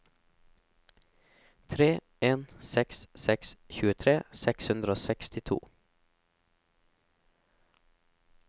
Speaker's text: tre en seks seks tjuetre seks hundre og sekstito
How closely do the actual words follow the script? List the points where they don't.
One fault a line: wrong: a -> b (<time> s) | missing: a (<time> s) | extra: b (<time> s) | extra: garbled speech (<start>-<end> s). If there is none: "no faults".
no faults